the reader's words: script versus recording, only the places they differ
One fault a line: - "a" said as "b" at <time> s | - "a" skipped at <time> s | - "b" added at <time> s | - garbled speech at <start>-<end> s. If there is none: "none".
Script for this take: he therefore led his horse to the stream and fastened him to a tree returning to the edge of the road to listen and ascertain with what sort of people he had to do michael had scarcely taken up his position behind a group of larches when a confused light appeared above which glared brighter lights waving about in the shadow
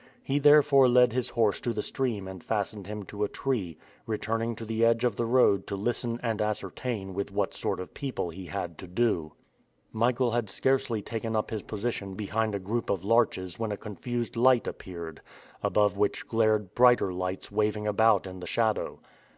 none